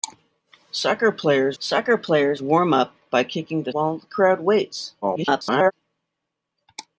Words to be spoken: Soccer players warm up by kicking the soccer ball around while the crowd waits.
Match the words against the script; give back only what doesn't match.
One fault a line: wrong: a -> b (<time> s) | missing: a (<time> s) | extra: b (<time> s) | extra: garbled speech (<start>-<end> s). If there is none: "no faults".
extra: soccer players (1.6 s)
missing: soccer ball around (3.7 s)
extra: garbled speech (5.0-5.7 s)